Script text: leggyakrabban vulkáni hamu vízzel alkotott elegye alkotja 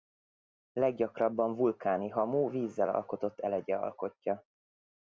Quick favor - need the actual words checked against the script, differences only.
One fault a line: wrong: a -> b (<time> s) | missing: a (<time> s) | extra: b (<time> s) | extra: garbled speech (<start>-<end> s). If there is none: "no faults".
no faults